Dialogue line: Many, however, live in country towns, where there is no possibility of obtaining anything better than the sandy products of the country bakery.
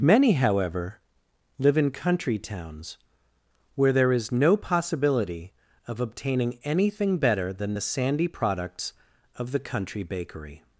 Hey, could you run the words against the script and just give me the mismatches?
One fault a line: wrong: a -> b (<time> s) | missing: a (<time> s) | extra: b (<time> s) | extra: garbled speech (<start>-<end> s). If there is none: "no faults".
no faults